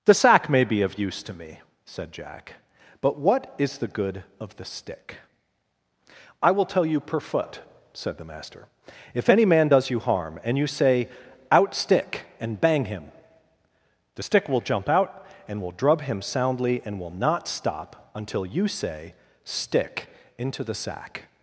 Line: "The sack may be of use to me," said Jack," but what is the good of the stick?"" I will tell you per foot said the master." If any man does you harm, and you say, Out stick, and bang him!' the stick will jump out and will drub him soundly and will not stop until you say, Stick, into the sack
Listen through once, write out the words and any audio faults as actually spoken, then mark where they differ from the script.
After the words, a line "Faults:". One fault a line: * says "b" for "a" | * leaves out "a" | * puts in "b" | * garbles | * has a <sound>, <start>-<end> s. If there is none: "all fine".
"The sack may be of use to me," said Jack," but what is the good of the stick?"" I will tell you per foot said the master." If any man does you harm, and you say, Out stick, and bang him!' the stick will jump out and will drub him soundly and will not stop until you say, Stick, into the sack
Faults:
all fine